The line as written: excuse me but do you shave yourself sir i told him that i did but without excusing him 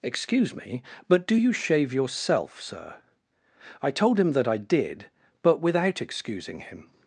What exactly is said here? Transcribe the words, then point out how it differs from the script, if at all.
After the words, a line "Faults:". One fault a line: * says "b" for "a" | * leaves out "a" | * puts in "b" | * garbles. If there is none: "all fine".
excuse me but do you shave yourself sir i told him that i did but without excusing him
Faults:
all fine